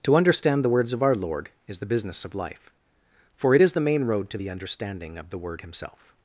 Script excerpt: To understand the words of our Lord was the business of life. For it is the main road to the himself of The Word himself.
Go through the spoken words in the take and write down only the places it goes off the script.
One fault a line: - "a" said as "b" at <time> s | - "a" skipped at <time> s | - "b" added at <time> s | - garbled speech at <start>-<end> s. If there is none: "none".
- "was" said as "is" at 1.7 s
- "himself" said as "understanding" at 4.5 s